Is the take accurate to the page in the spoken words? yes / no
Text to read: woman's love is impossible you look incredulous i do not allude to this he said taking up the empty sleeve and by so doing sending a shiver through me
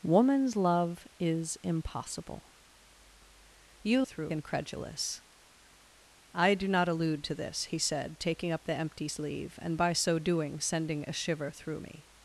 no